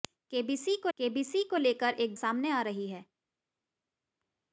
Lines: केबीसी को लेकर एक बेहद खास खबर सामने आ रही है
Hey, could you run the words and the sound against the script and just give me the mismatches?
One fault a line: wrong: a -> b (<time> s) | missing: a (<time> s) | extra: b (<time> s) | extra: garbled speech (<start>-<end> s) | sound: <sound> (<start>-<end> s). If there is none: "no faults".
extra: केबीसी को (1.0 s)
missing: बेहद खास खबर (2.2 s)